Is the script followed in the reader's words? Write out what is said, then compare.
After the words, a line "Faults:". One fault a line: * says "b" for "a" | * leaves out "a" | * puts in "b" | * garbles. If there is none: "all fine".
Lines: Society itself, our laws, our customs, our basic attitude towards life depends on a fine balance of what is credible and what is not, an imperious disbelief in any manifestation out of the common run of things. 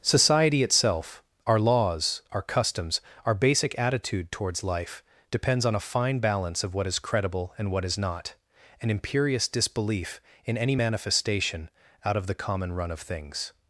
Society itself, our laws, our customs, our basic attitude towards life depends on a fine balance of what is credible and what is not, an imperious disbelief in any manifestation out of the common run of things.
Faults:
all fine